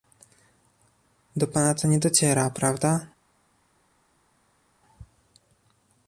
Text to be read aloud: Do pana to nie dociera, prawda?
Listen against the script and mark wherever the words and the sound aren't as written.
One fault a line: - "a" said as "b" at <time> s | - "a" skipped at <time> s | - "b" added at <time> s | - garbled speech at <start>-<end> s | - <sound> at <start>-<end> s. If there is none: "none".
none